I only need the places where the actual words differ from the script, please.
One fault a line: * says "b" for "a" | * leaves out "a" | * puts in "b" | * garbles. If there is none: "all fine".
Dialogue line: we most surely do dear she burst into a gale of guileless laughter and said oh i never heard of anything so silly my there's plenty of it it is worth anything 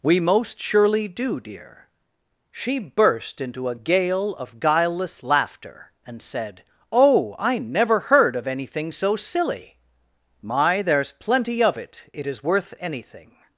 all fine